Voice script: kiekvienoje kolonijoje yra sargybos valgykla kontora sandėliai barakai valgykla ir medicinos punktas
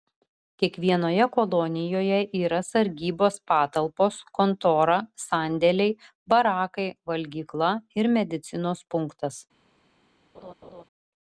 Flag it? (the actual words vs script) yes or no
yes